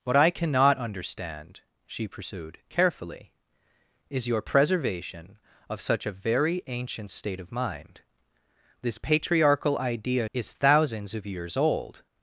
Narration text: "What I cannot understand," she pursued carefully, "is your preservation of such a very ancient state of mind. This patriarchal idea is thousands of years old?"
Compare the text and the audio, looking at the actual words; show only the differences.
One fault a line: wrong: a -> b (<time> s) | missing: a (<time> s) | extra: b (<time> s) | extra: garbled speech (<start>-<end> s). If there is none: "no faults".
no faults